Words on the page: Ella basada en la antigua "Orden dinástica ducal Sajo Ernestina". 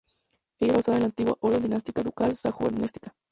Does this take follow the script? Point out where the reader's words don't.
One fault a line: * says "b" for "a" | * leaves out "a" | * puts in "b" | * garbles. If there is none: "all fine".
all fine